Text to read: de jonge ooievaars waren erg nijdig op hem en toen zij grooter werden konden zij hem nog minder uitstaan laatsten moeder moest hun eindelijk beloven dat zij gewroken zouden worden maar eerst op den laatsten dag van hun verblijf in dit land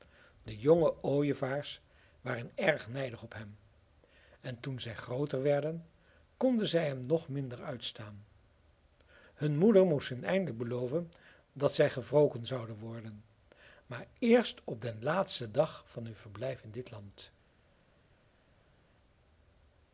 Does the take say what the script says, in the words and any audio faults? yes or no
no